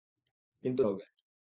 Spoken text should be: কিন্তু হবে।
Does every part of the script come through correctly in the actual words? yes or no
yes